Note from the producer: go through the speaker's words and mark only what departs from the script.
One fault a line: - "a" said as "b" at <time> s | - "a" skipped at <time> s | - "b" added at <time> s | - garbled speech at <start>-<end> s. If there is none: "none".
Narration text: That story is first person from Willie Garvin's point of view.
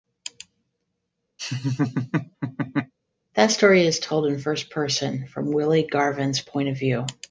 - "told in" added at 4.0 s